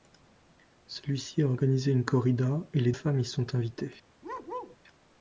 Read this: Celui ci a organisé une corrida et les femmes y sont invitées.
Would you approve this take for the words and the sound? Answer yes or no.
no